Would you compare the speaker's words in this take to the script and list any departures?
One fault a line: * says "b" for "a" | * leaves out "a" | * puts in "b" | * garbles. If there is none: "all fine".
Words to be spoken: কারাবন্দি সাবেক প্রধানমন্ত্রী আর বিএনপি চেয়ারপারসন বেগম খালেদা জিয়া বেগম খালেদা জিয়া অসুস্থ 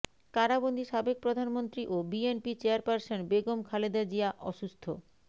* says "ও" for "আর"
* leaves out "বেগম খালেদা জিয়া"